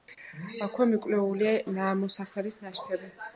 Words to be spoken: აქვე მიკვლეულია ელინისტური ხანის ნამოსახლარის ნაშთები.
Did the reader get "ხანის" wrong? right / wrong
wrong